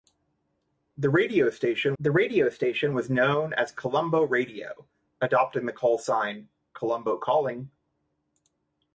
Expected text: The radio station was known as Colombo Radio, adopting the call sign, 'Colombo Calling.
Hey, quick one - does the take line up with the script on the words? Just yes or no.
no